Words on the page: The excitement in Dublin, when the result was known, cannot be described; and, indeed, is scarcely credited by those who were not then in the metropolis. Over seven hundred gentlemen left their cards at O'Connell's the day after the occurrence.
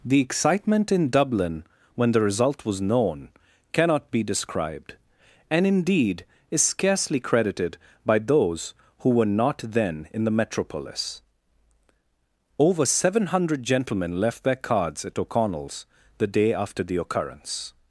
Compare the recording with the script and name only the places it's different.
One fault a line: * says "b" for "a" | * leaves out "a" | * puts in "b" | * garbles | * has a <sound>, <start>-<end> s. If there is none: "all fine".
all fine